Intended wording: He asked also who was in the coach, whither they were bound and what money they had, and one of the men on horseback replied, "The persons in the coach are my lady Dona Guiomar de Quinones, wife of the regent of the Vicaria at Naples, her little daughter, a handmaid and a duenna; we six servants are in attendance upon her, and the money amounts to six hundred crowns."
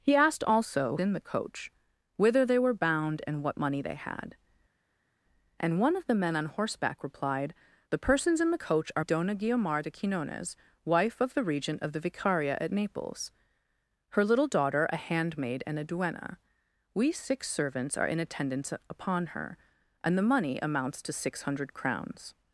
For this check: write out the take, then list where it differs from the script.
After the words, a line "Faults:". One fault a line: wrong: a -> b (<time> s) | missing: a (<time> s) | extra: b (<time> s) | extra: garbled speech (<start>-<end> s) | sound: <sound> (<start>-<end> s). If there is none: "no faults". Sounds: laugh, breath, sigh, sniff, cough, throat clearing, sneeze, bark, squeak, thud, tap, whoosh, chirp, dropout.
He asked also in the coach, whither they were bound and what money they had, and one of the men on horseback replied, "The persons in the coach are Dona Guiomar de Quinones, wife of the regent of the Vicaria at Naples, her little daughter, a handmaid and a duenna; we six servants are in attendance upon her, and the money amounts to six hundred crowns."
Faults:
missing: who was (1.0 s)
missing: my lady (9.0 s)